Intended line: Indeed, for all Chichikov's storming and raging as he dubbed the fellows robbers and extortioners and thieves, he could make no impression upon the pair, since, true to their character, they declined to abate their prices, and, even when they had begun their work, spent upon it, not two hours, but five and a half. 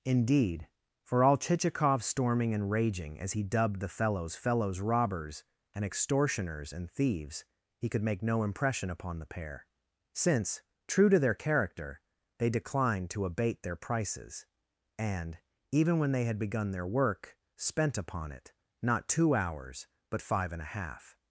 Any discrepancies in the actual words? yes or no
yes